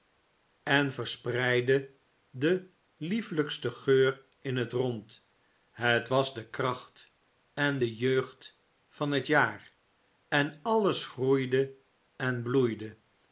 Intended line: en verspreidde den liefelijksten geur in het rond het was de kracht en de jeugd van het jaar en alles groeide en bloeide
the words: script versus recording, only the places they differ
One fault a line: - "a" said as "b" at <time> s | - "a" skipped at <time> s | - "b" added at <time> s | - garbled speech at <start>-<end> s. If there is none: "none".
none